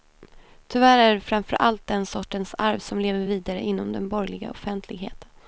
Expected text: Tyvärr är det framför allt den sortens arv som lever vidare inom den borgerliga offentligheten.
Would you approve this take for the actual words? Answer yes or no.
yes